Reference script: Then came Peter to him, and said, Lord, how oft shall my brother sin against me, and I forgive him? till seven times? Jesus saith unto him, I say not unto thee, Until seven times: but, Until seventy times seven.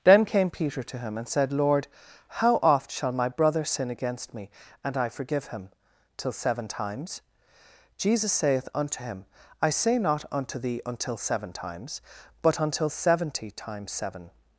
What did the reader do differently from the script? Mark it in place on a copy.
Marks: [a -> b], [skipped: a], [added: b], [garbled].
Then came Peter to him, and said, Lord, how oft shall my brother sin against me, and I forgive him? till seven times? Jesus saith unto him, I say not unto thee, Until seven times: but, Until seventy times seven.